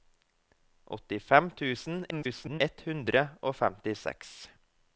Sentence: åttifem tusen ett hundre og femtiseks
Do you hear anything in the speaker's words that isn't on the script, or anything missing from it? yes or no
yes